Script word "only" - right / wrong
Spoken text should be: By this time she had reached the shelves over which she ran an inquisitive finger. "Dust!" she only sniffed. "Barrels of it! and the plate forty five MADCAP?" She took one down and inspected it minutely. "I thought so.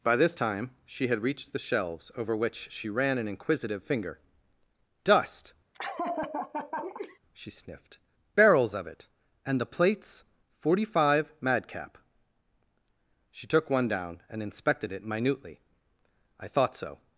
wrong